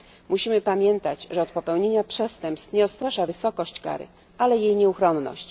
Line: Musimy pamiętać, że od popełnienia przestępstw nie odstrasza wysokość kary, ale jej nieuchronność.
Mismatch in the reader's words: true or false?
false